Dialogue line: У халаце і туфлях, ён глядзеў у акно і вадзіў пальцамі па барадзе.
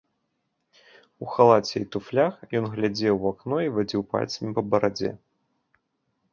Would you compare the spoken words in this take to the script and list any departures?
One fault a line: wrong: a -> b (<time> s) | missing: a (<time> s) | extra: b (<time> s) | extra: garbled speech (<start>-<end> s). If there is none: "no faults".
no faults